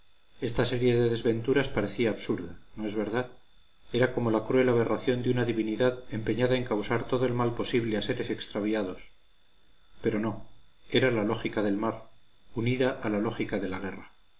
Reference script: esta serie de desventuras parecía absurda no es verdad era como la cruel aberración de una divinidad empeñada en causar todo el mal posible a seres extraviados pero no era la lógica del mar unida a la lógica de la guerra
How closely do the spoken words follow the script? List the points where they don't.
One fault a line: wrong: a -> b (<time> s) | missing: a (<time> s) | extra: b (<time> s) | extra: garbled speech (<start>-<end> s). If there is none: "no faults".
no faults